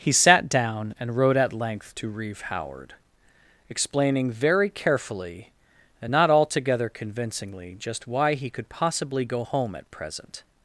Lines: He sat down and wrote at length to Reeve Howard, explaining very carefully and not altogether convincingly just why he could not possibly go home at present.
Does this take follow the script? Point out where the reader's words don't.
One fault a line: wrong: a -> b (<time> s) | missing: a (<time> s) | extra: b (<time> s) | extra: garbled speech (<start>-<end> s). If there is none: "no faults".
missing: not (8.7 s)